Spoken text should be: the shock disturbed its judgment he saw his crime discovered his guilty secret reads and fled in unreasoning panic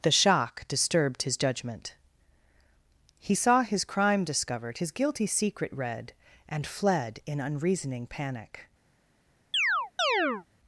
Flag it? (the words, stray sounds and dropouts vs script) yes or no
yes